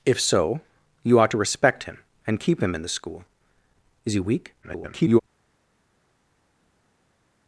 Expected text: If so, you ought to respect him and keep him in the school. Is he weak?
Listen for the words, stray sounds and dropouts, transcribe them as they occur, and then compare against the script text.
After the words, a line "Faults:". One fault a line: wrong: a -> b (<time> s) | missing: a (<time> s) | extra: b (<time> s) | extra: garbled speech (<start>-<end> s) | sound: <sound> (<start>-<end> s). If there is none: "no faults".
If so, you ought to respect him and keep him in the school. Is he weak? [garbled]
Faults:
extra: garbled speech (4.6-5.2 s)